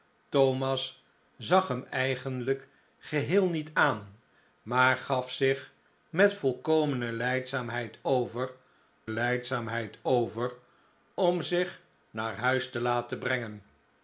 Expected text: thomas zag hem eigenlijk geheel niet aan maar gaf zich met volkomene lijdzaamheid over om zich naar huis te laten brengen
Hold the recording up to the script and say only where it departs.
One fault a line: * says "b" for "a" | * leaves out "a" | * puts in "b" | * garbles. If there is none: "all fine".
* puts in "lijdzaamheid over"